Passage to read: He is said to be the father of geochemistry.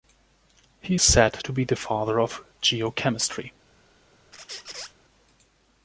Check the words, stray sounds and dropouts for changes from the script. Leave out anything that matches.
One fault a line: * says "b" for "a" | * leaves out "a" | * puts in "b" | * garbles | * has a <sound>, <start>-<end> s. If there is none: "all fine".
* has a squeak, 4.3-4.9 s